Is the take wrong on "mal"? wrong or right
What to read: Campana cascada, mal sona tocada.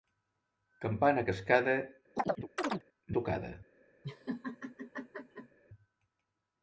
wrong